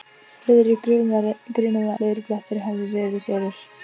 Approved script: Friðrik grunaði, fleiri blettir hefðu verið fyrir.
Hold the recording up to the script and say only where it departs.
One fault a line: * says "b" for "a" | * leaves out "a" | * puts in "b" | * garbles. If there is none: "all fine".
all fine